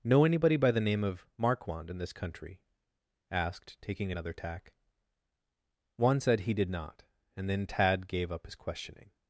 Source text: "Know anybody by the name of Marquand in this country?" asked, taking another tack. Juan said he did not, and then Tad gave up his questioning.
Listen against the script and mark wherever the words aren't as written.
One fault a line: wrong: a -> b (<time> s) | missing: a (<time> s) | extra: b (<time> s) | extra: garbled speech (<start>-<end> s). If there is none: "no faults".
no faults